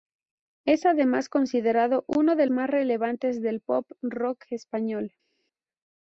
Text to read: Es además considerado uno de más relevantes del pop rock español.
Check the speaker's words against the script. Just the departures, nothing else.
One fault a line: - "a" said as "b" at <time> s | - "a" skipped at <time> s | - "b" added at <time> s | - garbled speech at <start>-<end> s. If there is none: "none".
none